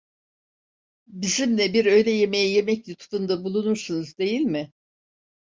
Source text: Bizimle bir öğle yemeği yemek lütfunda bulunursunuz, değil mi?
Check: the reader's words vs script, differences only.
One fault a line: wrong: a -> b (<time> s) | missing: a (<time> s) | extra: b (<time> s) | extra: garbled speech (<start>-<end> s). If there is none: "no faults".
no faults